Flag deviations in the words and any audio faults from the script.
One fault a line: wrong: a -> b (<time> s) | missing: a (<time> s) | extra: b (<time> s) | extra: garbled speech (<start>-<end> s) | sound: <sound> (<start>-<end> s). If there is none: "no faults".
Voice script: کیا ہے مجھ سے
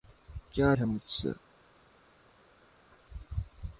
no faults